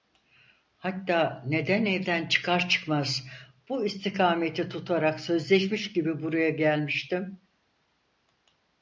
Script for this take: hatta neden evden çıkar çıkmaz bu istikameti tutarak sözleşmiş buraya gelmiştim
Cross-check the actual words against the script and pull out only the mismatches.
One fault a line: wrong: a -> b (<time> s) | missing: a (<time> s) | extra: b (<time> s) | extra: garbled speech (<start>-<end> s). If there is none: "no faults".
extra: gibi (5.9 s)